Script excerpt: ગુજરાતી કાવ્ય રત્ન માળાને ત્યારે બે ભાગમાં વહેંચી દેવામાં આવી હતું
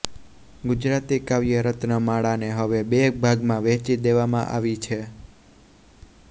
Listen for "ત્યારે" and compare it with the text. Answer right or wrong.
wrong